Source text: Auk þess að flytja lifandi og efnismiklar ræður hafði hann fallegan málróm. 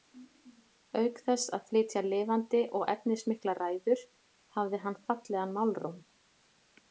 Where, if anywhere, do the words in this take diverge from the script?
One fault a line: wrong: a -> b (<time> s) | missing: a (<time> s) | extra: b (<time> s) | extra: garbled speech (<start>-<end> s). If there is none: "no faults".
no faults